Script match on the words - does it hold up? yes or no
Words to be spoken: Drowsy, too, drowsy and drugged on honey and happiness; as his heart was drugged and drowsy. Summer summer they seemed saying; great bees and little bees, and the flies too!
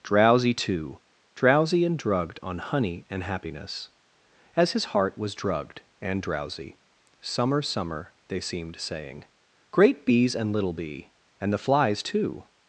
no